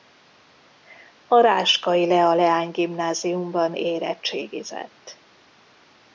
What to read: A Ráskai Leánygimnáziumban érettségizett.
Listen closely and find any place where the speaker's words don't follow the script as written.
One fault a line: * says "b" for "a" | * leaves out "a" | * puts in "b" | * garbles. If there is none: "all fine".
* puts in "Lea"